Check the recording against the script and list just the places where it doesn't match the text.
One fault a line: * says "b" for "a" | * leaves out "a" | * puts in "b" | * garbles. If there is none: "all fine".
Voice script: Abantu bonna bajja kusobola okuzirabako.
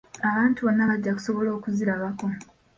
all fine